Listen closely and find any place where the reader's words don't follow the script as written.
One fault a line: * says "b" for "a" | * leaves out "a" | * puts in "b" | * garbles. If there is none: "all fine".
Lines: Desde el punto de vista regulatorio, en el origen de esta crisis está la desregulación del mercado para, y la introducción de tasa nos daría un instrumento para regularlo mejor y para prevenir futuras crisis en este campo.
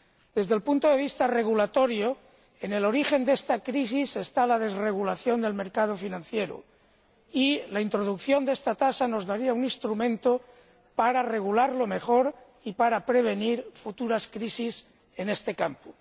* says "financiero" for "para"
* puts in "esta"